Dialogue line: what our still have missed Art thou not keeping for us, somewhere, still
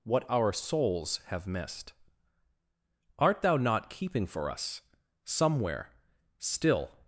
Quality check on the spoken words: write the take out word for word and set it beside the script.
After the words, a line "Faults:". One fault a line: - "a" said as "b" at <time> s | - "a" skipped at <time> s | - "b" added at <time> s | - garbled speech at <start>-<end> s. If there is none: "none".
what our souls have missed Art thou not keeping for us, somewhere, still
Faults:
- "still" said as "souls" at 0.5 s